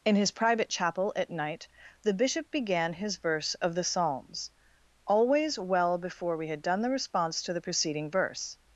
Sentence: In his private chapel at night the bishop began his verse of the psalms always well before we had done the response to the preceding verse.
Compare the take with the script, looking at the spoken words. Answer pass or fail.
pass